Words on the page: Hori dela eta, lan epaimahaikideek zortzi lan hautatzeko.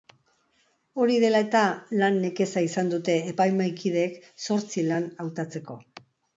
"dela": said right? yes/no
yes